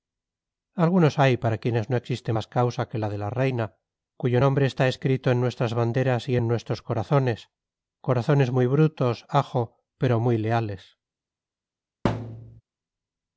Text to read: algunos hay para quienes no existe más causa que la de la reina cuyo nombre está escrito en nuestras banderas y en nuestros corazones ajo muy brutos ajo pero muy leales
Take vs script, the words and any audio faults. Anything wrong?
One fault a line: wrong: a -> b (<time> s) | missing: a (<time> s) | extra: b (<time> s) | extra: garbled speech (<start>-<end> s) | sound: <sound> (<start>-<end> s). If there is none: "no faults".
wrong: ajo -> corazones (8.0 s)
sound: thud (12.0-12.6 s)